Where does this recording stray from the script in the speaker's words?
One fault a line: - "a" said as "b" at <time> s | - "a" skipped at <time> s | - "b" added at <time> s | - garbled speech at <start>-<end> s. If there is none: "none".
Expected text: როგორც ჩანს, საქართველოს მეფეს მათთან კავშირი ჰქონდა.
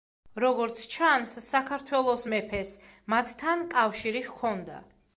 none